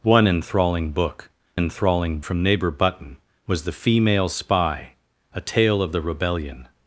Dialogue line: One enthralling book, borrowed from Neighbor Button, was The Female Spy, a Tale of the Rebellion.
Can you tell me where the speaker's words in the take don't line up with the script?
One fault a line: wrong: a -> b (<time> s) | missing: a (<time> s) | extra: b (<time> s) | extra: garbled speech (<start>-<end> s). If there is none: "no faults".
wrong: borrowed -> enthralling (1.5 s)